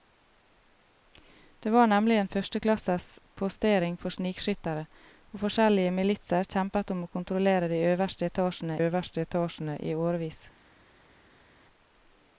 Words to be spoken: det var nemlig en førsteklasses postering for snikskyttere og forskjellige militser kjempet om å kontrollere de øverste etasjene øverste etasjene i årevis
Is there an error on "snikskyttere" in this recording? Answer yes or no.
no